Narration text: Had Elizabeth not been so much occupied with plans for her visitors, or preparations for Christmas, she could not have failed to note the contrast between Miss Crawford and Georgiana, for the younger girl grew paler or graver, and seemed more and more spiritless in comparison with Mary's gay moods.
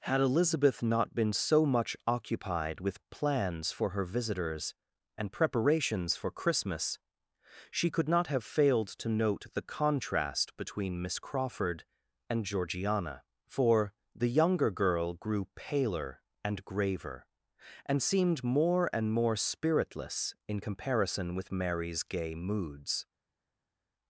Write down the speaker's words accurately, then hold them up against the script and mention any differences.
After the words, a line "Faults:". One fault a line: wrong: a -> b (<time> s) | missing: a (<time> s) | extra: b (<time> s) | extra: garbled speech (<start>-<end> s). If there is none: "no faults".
Had Elizabeth not been so much occupied with plans for her visitors, and preparations for Christmas, she could not have failed to note the contrast between Miss Crawford and Georgiana, for the younger girl grew paler and graver, and seemed more and more spiritless in comparison with Mary's gay moods.
Faults:
wrong: or -> and (5.2 s)
wrong: or -> and (16.4 s)